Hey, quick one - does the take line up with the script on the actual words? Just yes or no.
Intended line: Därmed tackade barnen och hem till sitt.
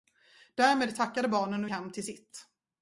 yes